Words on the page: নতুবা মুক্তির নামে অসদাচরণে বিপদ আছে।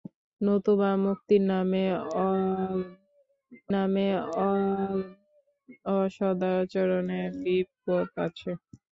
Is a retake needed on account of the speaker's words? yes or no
yes